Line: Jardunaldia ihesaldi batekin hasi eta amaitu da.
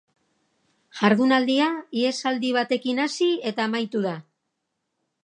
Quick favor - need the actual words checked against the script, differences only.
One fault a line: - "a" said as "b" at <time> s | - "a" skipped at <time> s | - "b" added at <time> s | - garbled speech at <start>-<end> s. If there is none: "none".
none